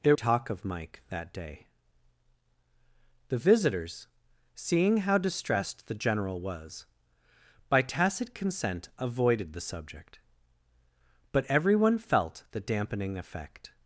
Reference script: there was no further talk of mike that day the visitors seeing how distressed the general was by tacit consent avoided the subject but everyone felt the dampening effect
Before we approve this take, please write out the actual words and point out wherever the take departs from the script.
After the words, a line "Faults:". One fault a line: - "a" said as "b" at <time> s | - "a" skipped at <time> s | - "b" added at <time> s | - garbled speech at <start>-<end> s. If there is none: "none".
there talk of mike that day the visitors seeing how distressed the general was by tacit consent avoided the subject but everyone felt the dampening effect
Faults:
- "was no further" skipped at 0.1 s